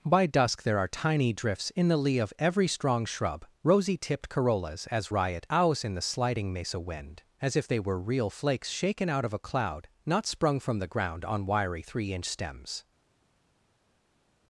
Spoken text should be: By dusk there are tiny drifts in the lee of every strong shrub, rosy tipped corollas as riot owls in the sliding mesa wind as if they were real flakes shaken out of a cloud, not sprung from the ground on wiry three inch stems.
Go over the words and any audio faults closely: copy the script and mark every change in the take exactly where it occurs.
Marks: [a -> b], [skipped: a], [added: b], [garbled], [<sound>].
By dusk there are tiny drifts in the lee of every strong shrub, rosy tipped corollas as riot owls in the sliding mesa wind as if they were real flakes shaken out of a cloud, not sprung from the ground on wiry three inch stems.